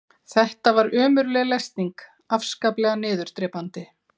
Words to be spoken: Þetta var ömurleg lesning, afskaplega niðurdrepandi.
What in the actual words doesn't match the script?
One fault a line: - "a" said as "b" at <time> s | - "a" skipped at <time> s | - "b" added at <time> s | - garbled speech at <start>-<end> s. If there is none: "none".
none